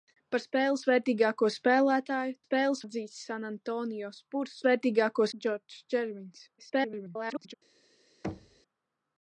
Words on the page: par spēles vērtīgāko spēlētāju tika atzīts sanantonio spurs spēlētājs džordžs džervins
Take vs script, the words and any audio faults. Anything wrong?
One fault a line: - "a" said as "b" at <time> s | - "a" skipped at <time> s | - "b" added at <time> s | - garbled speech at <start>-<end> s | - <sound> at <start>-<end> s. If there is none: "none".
- "tika" said as "spēles" at 2.4 s
- "spēlētājs" said as "vērtīgāko" at 4.7 s
- garbled speech at 6.6-7.5 s
- thud at 8.2-8.6 s